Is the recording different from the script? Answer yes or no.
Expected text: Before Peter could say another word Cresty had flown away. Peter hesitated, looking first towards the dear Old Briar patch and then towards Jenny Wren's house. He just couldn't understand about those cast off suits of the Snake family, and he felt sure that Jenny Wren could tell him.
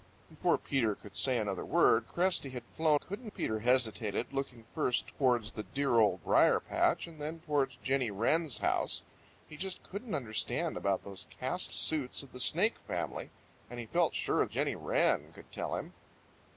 yes